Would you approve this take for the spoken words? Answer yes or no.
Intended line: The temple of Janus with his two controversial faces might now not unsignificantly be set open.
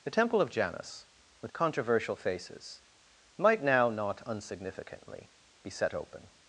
no